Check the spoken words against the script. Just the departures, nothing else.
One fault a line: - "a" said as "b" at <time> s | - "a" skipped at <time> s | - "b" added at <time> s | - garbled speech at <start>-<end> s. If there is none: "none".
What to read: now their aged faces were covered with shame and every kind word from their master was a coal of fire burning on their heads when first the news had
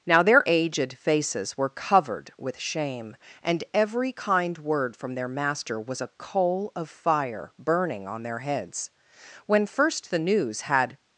none